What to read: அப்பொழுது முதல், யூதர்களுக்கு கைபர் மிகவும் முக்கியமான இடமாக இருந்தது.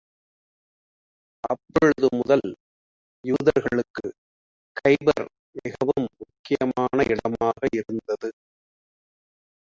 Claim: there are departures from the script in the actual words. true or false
false